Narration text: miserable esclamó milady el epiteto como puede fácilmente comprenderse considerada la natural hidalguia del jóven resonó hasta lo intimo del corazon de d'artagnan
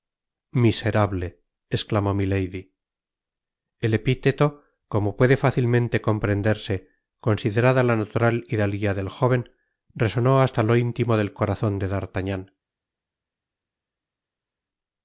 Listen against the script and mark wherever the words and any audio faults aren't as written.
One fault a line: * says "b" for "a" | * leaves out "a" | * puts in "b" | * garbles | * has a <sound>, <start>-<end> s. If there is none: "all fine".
all fine